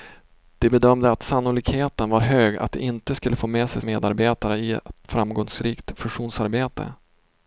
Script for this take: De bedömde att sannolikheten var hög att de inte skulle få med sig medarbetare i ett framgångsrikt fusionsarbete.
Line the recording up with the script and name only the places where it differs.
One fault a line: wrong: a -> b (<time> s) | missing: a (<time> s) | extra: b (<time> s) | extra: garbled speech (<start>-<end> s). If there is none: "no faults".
no faults